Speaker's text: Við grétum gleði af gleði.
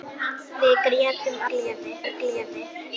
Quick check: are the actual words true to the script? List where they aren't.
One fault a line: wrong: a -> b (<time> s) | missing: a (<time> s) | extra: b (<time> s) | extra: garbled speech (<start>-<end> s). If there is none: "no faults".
no faults